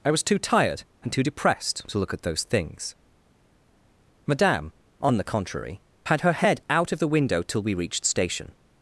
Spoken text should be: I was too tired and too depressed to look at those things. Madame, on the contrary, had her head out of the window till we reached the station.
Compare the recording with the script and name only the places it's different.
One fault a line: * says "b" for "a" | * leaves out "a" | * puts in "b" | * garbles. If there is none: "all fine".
* leaves out "the"